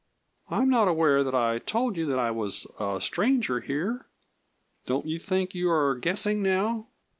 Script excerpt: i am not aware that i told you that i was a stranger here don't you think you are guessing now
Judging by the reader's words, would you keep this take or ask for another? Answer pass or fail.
pass